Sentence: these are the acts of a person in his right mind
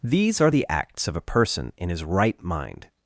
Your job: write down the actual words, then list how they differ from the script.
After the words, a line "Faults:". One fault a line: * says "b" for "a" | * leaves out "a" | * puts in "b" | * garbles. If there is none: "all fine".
these are the acts of a person in his right mind
Faults:
all fine